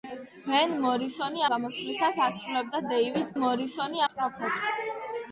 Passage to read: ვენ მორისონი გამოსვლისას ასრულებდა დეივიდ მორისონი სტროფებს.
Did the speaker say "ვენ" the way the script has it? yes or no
yes